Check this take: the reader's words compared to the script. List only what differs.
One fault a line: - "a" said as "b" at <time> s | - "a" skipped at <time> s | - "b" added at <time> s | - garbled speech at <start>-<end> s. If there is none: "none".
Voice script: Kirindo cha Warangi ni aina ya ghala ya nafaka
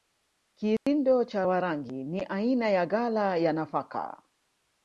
none